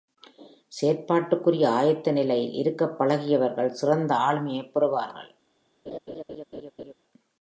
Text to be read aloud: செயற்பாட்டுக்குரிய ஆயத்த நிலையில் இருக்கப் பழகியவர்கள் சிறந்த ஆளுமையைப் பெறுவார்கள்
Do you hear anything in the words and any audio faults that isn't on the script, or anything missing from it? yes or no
yes